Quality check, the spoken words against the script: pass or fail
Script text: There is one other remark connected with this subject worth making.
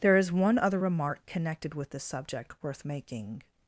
pass